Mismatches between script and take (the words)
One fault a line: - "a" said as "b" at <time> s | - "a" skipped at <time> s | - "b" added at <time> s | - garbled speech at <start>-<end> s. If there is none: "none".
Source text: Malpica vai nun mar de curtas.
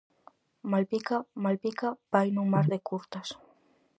- "malpica" added at 1.4 s